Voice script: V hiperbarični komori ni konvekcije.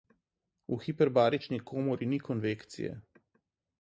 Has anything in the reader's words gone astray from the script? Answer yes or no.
no